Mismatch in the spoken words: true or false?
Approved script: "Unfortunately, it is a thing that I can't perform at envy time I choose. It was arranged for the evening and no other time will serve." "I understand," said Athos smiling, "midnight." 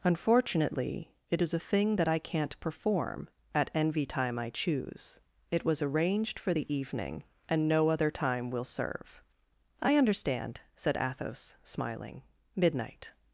false